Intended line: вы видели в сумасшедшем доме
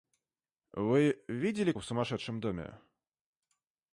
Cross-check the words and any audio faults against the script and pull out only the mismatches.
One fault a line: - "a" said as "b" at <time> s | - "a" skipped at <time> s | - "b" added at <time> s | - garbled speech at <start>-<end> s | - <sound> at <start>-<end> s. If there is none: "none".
none